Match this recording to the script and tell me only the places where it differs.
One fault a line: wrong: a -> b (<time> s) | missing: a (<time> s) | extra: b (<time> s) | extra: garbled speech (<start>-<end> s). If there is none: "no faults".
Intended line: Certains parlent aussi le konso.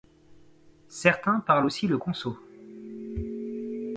no faults